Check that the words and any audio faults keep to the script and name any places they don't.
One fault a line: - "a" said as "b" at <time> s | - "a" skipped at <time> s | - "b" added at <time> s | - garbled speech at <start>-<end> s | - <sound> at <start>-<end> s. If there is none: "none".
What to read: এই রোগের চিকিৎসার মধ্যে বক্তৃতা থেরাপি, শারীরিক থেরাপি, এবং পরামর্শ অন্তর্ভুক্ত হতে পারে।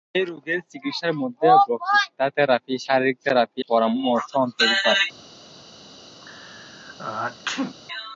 - "এবং" skipped at 3.6 s
- "হতে" skipped at 4.9 s
- sneeze at 6.2-7.8 s